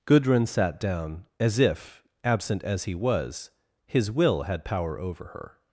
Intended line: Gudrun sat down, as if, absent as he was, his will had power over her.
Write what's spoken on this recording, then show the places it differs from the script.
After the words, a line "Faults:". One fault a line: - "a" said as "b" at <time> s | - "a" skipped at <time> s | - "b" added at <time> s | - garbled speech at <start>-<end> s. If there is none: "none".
Gudrun sat down, as if, absent as he was, his will had power over her.
Faults:
none